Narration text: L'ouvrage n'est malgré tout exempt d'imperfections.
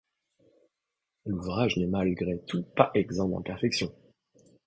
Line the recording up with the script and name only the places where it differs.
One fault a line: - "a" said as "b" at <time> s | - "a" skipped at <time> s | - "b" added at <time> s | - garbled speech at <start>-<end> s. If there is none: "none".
- "pas" added at 2.8 s